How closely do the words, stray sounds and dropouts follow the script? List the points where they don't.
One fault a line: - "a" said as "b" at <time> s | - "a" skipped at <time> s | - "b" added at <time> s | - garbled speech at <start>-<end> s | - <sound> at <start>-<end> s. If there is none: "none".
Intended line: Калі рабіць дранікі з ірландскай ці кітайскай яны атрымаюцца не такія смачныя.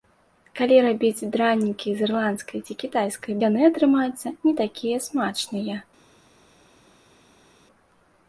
none